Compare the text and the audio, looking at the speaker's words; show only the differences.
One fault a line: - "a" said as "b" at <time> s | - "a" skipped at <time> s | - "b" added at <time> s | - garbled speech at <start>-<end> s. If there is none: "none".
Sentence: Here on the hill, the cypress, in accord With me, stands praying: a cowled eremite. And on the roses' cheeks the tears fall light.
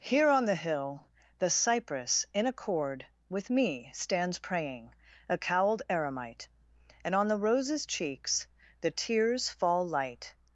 none